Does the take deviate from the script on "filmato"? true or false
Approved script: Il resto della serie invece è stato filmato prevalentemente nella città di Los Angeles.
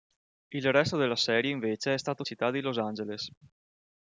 true